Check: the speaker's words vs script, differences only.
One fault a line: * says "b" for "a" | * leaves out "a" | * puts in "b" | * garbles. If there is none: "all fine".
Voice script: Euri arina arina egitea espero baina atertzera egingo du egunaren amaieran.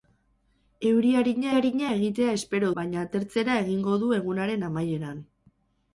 all fine